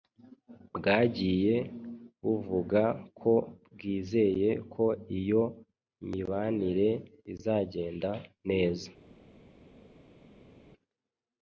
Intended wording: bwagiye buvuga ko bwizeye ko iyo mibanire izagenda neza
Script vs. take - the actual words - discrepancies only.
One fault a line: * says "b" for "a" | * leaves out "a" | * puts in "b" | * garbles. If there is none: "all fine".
all fine